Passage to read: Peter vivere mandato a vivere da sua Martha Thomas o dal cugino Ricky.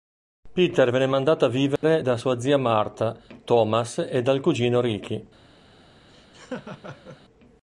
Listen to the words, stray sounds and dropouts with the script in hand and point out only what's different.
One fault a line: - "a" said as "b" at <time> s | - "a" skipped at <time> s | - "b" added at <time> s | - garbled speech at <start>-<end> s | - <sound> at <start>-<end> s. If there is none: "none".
- "vivere" said as "venne" at 0.9 s
- dropout at 1.8-1.8 s
- "zia" added at 2.4 s
- "o" said as "e" at 4.0 s
- laugh at 6.1-7.2 s